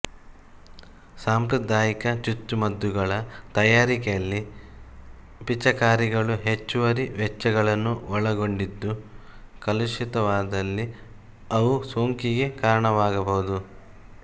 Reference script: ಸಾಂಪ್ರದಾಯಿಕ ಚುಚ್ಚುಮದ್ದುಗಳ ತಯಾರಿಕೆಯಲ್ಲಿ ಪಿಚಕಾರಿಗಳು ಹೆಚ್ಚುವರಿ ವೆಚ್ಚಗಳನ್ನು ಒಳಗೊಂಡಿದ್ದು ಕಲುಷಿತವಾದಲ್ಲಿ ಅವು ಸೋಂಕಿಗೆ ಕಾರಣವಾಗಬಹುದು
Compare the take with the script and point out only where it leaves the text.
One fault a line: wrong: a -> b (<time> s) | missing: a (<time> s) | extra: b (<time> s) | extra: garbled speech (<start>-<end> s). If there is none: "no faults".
no faults